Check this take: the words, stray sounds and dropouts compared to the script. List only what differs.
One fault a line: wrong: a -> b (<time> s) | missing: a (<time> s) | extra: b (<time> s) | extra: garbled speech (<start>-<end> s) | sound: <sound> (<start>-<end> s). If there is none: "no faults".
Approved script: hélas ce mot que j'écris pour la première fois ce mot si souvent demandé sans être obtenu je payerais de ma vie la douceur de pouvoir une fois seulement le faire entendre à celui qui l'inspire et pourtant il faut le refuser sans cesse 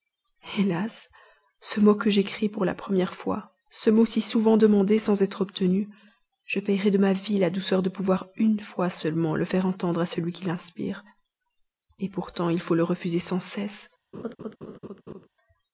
sound: laugh (14.1-15.3 s)